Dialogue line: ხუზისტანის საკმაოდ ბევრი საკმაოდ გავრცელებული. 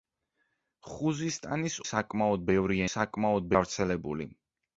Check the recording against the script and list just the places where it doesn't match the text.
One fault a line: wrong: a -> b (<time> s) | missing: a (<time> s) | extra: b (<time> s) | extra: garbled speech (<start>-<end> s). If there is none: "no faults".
no faults